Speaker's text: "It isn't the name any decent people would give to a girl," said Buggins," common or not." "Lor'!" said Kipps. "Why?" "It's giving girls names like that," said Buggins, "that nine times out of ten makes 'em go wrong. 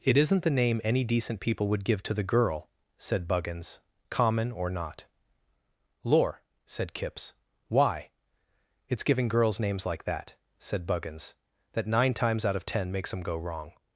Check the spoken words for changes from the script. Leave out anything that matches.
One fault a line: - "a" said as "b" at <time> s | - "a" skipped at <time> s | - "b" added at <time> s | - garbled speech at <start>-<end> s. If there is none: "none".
- "a" said as "the" at 2.1 s